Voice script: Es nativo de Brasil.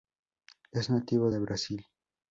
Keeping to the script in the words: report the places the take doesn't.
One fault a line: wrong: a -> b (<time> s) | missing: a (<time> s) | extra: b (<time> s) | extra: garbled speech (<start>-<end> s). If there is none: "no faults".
no faults